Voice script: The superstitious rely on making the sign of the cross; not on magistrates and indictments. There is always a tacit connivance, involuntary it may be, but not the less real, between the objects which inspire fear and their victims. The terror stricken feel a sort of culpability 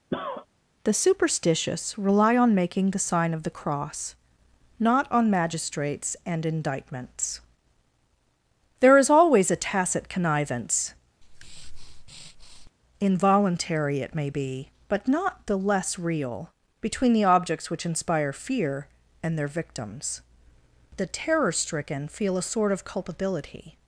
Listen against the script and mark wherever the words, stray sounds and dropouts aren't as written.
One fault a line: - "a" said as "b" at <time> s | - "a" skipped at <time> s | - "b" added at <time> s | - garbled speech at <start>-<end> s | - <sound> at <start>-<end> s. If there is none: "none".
- cough at 0.1-0.5 s
- breath at 11.2-12.7 s